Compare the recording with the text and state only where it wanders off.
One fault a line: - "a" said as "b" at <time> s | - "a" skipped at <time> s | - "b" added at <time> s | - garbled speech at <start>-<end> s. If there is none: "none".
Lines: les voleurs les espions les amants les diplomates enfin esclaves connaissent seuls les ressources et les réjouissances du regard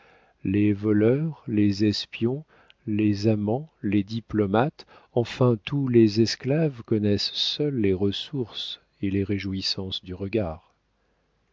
- "tous les" added at 5.6 s